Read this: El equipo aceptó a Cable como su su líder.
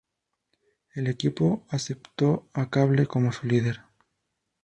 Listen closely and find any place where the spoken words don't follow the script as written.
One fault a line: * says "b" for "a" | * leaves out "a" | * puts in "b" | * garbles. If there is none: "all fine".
* leaves out "su"